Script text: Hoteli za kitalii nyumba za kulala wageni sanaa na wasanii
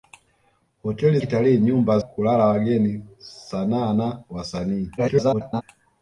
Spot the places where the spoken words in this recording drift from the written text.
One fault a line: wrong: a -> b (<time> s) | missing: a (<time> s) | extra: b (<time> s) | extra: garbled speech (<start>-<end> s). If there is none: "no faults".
missing: za (1.2 s)
missing: za (2.0 s)
extra: garbled speech (5.0-5.6 s)